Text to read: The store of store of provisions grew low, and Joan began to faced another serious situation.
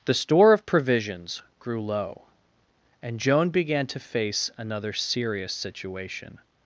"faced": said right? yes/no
no